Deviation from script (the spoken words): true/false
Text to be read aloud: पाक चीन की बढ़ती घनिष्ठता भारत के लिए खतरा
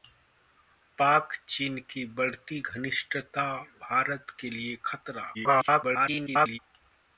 true